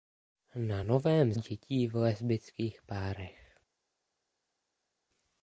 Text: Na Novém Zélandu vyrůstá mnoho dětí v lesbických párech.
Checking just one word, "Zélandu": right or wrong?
wrong